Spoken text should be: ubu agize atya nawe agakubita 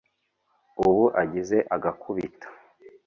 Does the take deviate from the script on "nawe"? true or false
true